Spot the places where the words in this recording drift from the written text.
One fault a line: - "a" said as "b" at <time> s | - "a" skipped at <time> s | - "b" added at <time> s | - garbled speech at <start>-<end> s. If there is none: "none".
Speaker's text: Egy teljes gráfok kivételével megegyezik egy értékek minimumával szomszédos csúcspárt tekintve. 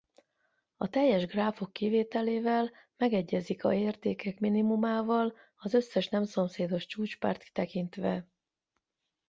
- "Egy" said as "A" at 0.8 s
- "egy" said as "a" at 3.6 s
- "az összes nem" added at 5.5 s